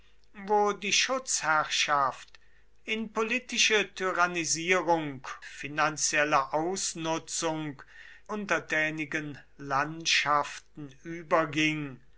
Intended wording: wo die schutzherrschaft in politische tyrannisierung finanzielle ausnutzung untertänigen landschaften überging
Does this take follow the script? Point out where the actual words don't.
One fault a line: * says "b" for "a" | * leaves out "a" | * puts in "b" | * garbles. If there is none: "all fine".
all fine